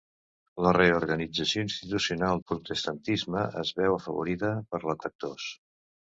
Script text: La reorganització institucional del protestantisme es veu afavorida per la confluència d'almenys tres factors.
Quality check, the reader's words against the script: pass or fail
fail